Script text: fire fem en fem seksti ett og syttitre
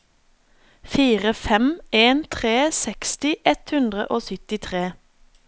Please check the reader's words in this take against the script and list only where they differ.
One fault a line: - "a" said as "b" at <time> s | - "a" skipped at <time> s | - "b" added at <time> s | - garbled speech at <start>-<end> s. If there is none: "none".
- "fem" said as "tre" at 2.4 s
- "hundre" added at 3.8 s